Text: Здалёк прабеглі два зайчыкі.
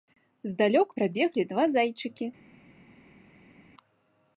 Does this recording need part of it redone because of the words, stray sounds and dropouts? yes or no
no